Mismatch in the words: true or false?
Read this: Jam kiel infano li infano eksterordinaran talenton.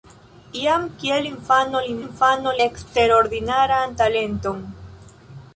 false